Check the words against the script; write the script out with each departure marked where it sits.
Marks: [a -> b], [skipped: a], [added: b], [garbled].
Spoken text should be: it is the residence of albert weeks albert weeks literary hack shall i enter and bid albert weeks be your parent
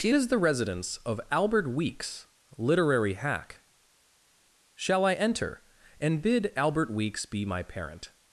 it is the residence of albert weeks [skipped: albert weeks] literary hack shall i enter and bid albert weeks be [your -> my] parent